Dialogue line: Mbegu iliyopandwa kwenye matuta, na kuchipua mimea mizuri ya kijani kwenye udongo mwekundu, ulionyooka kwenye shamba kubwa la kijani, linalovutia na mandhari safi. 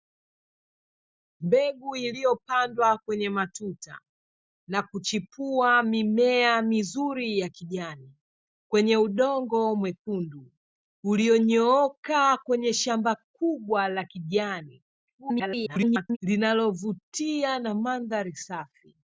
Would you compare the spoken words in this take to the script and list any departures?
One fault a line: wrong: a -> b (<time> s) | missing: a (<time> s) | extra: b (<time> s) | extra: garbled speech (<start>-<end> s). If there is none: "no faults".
extra: garbled speech (15.2-16.2 s)